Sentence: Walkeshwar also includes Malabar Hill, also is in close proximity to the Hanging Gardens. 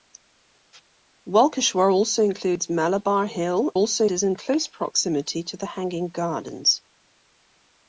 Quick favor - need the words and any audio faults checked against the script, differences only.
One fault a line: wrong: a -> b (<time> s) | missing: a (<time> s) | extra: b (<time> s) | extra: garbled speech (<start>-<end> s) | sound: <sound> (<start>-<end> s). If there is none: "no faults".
no faults